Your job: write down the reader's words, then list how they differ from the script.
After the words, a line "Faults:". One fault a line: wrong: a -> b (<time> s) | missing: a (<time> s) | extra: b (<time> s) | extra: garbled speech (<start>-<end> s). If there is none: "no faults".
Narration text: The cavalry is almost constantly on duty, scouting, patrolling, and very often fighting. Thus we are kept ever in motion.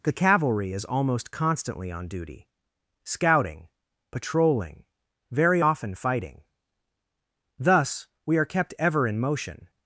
The cavalry is almost constantly on duty, scouting, patrolling, very often fighting. Thus we are kept ever in motion.
Faults:
missing: and (4.8 s)